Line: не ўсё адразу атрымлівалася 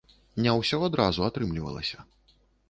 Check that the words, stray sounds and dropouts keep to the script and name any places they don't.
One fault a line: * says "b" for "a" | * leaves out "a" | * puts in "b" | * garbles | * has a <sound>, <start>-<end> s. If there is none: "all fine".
all fine